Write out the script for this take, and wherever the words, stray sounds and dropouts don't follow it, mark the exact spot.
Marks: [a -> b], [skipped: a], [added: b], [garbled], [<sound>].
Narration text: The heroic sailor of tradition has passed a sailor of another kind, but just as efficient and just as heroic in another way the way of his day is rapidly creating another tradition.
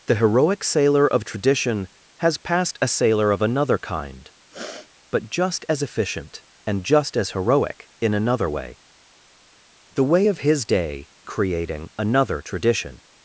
The heroic sailor of tradition has passed a sailor of another kind, [sniff] but just as efficient and just as heroic in another way the way of his day [skipped: is rapidly] creating another tradition.